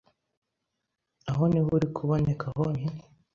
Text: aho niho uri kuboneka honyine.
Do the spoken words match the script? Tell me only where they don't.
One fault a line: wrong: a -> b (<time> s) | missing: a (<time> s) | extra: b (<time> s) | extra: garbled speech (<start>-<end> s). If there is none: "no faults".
no faults